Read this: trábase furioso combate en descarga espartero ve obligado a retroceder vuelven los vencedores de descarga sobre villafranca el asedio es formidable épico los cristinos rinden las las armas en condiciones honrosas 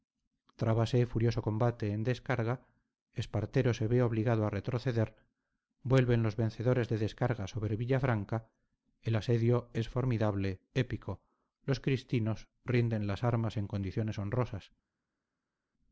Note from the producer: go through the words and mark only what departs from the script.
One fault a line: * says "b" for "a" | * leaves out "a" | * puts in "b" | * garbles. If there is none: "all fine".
* puts in "se"
* leaves out "las"